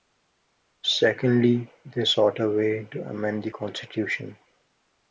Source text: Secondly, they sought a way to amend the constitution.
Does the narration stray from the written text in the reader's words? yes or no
no